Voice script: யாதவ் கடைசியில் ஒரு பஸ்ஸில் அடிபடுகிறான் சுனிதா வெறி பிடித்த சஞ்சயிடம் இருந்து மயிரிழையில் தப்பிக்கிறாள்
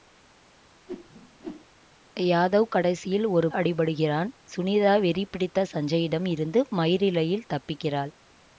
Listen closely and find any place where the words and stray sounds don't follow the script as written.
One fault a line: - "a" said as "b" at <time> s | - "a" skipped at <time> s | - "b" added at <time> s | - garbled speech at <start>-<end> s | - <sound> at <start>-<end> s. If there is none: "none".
- whoosh at 0.9-1.7 s
- "பஸ்ஸில்" skipped at 3.5 s